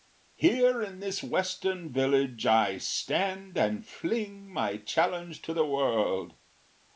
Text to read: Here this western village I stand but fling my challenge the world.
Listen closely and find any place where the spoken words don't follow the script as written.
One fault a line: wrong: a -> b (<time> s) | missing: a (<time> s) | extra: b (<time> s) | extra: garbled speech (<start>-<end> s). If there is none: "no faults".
extra: in (0.8 s)
wrong: but -> and (3.5 s)
extra: to (5.4 s)